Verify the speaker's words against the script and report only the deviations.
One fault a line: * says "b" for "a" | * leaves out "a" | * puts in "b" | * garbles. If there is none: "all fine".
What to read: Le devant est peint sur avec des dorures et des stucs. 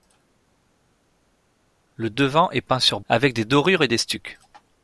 all fine